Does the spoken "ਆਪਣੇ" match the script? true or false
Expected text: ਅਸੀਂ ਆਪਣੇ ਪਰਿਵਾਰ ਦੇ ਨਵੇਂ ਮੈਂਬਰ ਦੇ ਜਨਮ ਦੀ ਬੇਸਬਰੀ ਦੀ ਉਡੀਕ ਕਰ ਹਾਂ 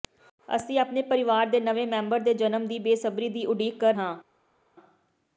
true